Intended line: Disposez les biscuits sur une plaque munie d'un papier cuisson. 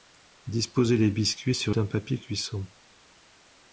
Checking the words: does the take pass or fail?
fail